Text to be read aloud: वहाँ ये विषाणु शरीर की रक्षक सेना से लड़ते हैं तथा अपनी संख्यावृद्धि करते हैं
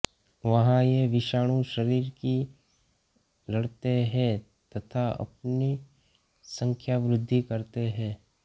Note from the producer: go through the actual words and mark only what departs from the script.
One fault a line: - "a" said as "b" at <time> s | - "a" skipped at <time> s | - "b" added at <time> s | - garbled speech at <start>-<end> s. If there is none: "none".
- "रक्षक सेना से" skipped at 2.3 s